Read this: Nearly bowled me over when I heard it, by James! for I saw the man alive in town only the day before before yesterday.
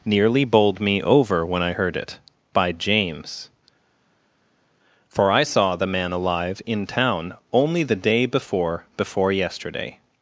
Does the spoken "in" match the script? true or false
true